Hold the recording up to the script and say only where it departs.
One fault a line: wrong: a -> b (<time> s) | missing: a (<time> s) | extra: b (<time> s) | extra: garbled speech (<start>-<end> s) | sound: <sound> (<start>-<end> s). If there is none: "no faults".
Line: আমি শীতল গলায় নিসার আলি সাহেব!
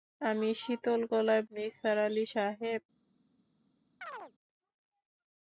sound: chirp (4.0-4.3 s)